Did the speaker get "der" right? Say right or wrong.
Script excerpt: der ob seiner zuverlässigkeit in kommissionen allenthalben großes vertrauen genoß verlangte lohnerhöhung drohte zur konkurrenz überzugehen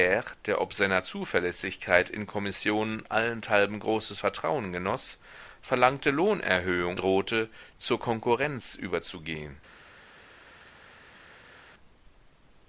right